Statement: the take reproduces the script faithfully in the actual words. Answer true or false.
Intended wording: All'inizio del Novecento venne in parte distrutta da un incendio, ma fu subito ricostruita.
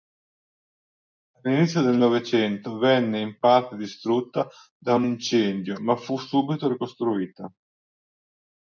true